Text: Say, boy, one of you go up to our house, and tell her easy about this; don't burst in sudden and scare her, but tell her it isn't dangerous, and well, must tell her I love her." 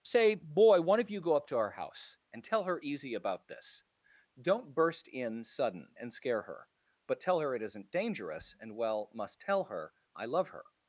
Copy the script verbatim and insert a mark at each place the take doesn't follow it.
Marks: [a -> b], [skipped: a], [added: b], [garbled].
Say, boy, one of you go up to our house, and tell her easy about this; don't burst in sudden and scare her, but tell her it isn't dangerous, and well, must tell her I love her."